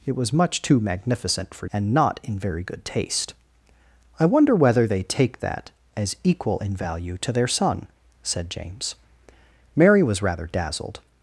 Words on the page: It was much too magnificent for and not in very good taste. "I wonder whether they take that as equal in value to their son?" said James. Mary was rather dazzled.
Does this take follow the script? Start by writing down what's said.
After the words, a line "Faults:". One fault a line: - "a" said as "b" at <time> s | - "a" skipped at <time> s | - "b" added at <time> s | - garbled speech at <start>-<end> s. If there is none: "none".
It was much too magnificent for and not in very good taste. "I wonder whether they take that as equal in value to their son?" said James. Mary was rather dazzled.
Faults:
none